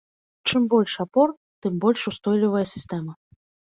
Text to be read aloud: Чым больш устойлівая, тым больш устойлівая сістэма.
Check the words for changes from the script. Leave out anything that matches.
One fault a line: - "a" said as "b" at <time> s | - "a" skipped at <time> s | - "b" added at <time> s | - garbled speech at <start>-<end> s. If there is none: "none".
- "устойлівая" said as "апор" at 1.0 s